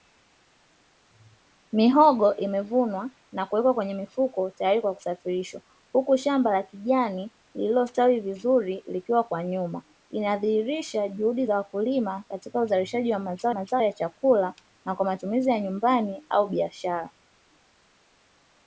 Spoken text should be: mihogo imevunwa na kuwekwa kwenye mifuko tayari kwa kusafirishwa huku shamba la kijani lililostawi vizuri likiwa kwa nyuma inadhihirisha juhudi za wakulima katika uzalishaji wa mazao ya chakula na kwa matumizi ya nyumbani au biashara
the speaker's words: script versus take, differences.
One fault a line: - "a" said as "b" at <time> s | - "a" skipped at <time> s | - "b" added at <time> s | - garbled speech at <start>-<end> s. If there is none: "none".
- "mazao" added at 13.5 s